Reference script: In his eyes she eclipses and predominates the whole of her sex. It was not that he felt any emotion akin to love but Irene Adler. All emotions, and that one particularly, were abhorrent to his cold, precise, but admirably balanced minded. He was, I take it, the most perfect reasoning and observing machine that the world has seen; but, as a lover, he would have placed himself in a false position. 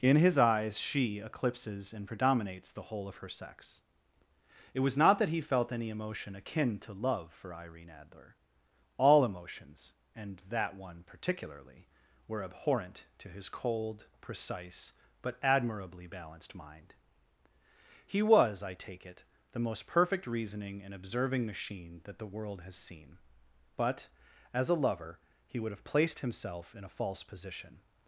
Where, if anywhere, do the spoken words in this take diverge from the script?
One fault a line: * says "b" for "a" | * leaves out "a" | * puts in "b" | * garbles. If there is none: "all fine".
* says "for" for "but"
* says "mind" for "minded"